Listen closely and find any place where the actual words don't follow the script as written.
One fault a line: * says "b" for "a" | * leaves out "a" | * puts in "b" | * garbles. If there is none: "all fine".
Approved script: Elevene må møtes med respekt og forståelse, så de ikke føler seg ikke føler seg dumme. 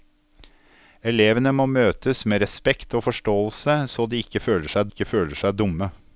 all fine